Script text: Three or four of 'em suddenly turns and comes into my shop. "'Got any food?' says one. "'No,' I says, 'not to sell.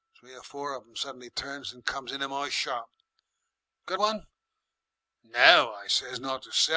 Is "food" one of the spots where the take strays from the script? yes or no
yes